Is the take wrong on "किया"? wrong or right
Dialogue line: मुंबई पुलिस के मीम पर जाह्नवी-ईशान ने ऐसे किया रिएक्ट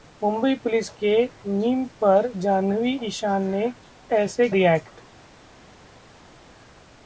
wrong